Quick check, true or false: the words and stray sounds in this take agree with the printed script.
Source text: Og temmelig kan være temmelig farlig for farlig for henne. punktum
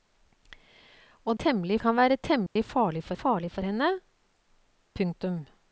false